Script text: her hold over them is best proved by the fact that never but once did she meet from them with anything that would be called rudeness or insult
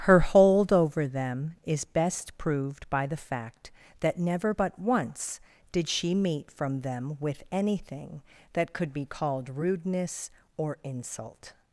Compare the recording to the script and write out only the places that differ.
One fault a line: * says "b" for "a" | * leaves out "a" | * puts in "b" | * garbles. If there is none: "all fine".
* says "could" for "would"